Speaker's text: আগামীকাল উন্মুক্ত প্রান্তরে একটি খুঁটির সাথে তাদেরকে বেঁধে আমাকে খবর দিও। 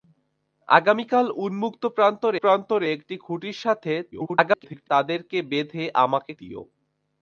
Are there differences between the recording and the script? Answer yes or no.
yes